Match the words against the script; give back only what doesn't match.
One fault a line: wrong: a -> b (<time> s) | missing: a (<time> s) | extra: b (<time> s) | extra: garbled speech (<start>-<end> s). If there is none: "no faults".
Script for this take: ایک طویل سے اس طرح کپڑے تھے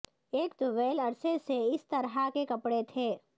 extra: عرصے (1.0 s)
extra: کے (2.3 s)